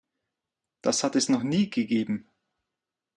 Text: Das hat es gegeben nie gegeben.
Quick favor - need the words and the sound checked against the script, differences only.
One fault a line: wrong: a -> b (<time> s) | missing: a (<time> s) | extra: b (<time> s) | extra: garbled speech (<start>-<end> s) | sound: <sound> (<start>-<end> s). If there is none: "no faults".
wrong: gegeben -> noch (1.3 s)